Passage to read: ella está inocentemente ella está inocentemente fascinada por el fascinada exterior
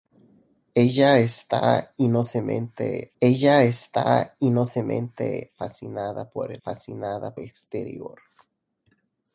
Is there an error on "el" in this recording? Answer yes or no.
no